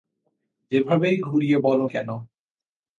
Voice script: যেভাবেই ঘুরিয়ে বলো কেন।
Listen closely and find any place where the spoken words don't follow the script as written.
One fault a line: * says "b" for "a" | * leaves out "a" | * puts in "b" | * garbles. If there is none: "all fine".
all fine